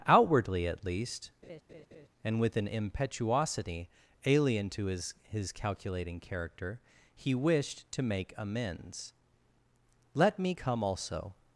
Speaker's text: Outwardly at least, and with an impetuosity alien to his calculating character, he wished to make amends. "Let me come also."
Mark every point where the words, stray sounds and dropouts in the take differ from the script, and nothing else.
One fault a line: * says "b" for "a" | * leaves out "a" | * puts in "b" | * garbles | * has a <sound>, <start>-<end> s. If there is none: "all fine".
* has a laugh, 1.4-2.1 s
* puts in "his"